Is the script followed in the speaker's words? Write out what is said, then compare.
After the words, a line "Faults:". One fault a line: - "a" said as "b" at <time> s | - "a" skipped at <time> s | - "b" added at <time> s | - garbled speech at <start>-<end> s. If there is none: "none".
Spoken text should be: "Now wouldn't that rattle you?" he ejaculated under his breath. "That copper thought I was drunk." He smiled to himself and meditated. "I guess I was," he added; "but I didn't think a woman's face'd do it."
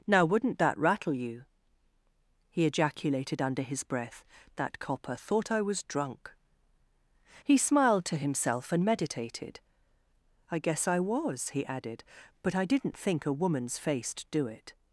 "Now wouldn't that rattle you?" he ejaculated under his breath. "That copper thought I was drunk." He smiled to himself and meditated. "I guess I was," he added; "but I didn't think a woman's face'd do it."
Faults:
none